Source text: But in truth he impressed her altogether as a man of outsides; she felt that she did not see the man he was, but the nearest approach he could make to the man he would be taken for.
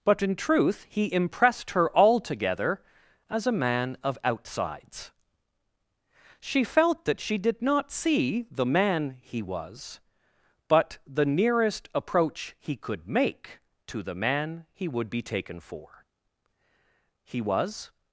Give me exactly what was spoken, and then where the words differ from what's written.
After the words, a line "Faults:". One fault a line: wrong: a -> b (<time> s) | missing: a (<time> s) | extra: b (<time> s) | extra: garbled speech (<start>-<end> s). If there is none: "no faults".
But in truth he impressed her altogether as a man of outsides; she felt that she did not see the man he was, but the nearest approach he could make to the man he would be taken for. He was
Faults:
extra: He was (17.2 s)